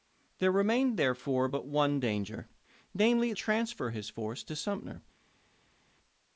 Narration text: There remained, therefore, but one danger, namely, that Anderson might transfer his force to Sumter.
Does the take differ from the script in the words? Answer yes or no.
yes